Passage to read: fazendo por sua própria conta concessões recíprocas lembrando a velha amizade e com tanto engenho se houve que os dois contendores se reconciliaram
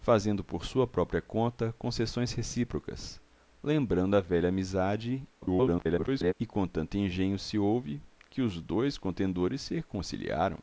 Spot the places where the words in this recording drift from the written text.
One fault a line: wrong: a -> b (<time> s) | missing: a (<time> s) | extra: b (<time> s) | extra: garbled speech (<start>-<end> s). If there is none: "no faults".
extra: garbled speech (5.4-6.3 s)